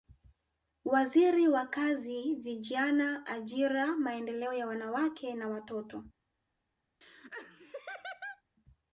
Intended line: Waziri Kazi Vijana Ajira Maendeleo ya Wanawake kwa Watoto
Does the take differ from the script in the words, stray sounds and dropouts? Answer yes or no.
yes